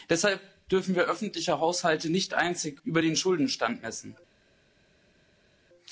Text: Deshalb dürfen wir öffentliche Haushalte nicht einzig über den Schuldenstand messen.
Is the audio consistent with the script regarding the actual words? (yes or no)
yes